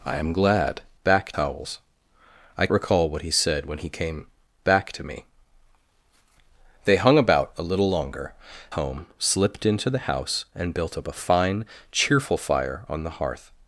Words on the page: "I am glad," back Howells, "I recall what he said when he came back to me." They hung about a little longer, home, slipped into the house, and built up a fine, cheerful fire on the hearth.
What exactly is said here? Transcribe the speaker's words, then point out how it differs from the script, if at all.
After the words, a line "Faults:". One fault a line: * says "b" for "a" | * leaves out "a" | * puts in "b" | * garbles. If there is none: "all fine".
"I am glad," back Howells, "I recall what he said when he came back to me." They hung about a little longer, home, slipped into the house, and built up a fine, cheerful fire on the hearth.
Faults:
all fine